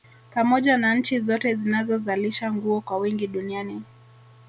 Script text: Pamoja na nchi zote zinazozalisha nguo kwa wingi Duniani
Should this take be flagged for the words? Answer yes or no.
no